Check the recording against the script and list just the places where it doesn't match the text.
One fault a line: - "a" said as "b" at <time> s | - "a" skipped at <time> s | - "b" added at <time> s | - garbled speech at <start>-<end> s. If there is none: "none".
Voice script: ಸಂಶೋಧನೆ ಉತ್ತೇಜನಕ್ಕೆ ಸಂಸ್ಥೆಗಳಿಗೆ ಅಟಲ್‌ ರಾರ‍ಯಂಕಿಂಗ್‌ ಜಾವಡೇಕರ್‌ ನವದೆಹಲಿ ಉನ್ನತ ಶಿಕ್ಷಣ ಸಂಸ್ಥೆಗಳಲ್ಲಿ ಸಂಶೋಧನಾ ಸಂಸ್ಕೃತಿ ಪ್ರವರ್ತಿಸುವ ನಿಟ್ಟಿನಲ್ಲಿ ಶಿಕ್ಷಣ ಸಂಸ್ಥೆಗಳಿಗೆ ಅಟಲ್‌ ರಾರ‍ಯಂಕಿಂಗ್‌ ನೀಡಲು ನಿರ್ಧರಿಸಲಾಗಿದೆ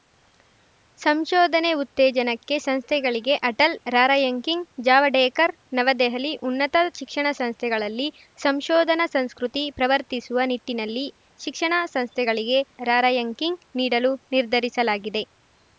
- "ಅಟಲ್" skipped at 12.6 s